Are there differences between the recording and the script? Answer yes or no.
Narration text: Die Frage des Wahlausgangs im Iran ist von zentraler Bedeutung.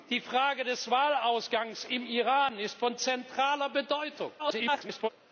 yes